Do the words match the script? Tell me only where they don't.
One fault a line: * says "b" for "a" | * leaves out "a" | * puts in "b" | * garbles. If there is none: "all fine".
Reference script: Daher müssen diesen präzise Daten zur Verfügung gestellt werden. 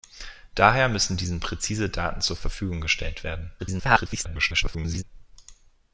* garbles